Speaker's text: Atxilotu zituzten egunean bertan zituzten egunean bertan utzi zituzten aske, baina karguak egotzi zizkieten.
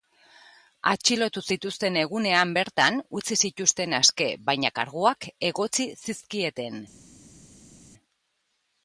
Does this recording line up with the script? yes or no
no